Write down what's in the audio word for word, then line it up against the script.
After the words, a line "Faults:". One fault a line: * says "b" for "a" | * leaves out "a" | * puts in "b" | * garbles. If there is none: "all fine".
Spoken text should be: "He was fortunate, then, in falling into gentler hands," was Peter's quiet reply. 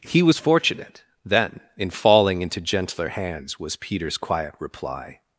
"He was fortunate, then, in falling into gentler hands," was Peter's quiet reply.
Faults:
all fine